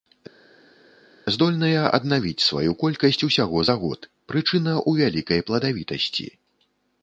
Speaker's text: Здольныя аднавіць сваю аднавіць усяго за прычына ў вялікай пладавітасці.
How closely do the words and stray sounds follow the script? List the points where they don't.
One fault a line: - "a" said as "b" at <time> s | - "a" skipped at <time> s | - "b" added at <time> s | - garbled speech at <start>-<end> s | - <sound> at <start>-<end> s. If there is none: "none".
- "аднавіць" said as "колькасць" at 2.8 s
- "год" added at 3.8 s